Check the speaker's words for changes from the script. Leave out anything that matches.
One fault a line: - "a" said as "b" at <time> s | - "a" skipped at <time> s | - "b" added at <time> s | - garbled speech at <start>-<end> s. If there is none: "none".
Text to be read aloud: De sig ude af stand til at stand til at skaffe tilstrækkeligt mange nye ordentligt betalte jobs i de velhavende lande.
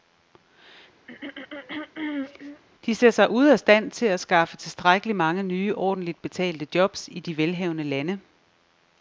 - "ser" added at 2.9 s
- "stand til at" skipped at 4.2 s